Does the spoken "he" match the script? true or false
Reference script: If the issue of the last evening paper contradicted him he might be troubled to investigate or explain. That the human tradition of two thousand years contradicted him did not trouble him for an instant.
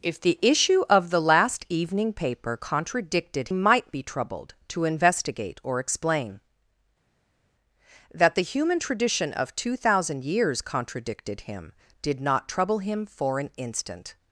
false